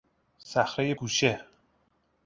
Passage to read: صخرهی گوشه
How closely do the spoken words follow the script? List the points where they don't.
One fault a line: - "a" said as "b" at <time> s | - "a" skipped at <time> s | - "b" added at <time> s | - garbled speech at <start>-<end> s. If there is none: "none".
none